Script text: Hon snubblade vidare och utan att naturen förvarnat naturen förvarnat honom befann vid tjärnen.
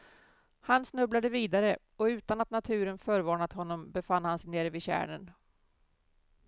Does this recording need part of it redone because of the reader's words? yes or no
yes